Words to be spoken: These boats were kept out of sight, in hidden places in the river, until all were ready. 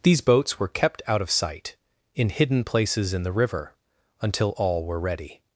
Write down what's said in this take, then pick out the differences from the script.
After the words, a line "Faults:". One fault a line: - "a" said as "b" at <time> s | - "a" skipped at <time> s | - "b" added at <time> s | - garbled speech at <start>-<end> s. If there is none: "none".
These boats were kept out of sight, in hidden places in the river, until all were ready.
Faults:
none